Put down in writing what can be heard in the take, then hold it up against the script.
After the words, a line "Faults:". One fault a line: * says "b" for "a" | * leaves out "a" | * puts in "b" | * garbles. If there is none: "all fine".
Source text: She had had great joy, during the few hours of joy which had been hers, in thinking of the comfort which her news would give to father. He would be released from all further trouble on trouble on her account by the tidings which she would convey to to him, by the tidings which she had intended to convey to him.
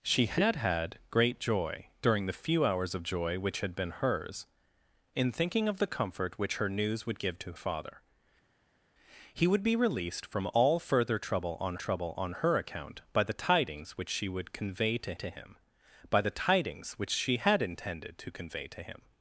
She had had great joy, during the few hours of joy which had been hers, in thinking of the comfort which her news would give to father. He would be released from all further trouble on trouble on her account by the tidings which she would convey to to him, by the tidings which she had intended to convey to him.
Faults:
all fine